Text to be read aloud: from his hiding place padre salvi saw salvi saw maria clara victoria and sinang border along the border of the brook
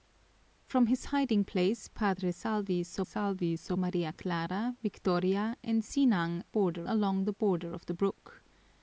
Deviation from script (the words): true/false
false